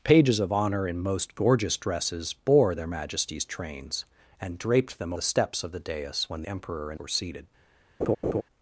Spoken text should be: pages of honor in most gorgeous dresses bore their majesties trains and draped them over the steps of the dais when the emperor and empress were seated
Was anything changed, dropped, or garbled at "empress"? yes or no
yes